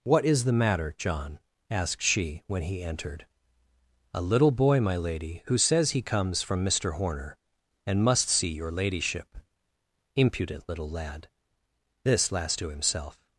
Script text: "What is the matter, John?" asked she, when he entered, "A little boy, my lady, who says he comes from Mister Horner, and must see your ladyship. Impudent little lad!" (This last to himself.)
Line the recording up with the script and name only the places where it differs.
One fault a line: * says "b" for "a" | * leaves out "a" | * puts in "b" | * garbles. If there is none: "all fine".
all fine